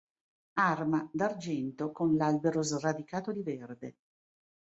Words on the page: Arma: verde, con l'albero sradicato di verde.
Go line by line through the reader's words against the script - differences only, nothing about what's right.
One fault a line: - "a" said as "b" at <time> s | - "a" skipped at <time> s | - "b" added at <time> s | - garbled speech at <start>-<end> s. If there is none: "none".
- "verde" said as "d'argento" at 1.1 s